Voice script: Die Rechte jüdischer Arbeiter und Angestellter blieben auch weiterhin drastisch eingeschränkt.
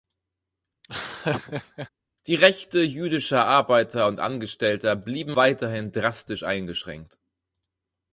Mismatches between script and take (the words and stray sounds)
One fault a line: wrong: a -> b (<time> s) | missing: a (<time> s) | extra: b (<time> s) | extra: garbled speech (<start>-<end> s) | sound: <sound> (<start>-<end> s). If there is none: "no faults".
sound: laugh (0.8-1.9 s)
missing: auch (5.4 s)